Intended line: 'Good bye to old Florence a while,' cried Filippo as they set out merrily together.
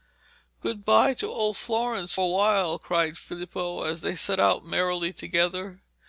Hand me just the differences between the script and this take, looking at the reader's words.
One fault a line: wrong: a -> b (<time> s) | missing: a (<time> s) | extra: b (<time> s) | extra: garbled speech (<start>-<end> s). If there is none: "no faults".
no faults